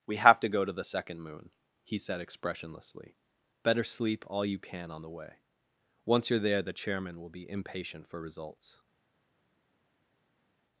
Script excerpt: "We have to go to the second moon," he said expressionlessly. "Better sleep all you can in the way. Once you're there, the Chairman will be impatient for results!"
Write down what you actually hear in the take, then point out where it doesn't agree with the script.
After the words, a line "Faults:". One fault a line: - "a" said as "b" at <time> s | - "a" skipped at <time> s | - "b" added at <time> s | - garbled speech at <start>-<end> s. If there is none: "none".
"We have to go to the second moon," he said expressionlessly. "Better sleep all you can on the way. Once you're there, the Chairman will be impatient for results!"
Faults:
- "in" said as "on" at 4.9 s